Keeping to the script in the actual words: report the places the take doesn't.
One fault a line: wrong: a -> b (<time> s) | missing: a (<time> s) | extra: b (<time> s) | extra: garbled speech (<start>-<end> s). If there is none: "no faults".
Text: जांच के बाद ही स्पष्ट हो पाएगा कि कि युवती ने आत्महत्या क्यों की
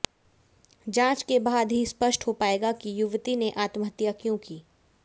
missing: कि (3.0 s)